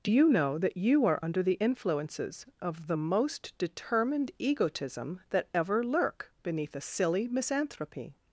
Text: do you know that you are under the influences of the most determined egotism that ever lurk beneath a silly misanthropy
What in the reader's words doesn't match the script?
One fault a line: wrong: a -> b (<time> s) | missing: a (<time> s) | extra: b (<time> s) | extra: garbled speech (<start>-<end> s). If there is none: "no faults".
no faults